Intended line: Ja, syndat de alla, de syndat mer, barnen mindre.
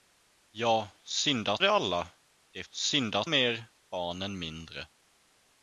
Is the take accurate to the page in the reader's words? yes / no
yes